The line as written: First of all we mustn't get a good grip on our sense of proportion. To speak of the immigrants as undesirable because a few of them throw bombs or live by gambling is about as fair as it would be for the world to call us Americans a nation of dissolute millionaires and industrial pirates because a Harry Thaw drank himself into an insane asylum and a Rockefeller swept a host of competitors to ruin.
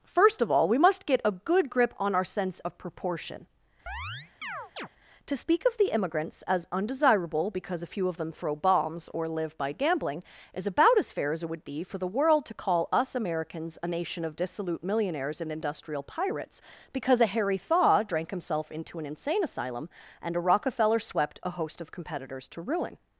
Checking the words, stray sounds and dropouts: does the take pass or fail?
fail